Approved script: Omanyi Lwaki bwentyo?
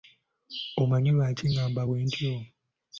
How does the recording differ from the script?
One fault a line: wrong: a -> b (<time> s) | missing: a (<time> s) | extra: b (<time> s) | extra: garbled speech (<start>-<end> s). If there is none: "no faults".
extra: ngamba (1.5 s)